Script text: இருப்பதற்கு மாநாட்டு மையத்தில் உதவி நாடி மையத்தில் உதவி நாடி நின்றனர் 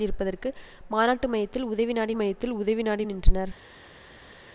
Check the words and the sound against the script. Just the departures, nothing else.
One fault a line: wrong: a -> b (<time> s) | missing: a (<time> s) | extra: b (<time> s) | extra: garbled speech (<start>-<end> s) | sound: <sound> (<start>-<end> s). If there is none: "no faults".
no faults